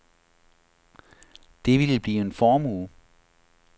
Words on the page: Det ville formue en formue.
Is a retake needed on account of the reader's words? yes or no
yes